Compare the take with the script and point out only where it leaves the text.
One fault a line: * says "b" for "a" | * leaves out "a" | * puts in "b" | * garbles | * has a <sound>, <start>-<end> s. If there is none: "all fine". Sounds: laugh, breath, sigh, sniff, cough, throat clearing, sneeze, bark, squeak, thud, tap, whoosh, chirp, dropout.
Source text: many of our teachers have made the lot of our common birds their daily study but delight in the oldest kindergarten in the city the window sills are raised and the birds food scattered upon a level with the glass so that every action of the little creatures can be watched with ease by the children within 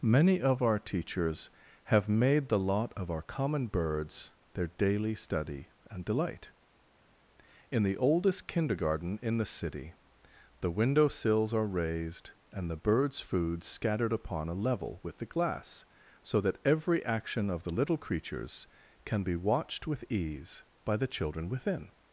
* says "and" for "but"